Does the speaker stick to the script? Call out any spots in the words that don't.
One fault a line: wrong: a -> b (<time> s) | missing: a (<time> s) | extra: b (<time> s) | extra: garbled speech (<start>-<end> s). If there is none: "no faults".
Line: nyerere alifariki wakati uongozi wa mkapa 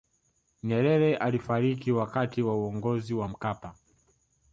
extra: wa (2.4 s)